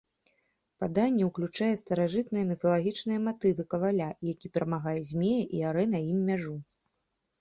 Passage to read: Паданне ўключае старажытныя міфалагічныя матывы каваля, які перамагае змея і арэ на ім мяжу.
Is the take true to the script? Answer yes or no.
yes